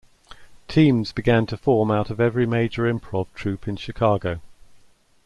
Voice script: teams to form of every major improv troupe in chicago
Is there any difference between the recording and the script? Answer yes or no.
yes